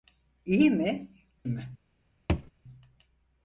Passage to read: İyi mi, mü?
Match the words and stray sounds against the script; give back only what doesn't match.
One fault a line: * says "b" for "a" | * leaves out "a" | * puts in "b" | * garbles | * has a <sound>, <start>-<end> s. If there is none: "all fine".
* has a thud, 2.3-2.5 s